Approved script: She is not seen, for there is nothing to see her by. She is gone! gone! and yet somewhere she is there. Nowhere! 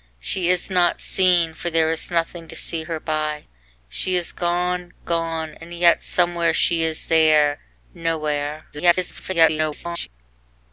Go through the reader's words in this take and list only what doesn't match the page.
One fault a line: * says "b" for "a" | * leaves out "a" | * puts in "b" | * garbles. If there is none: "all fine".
* garbles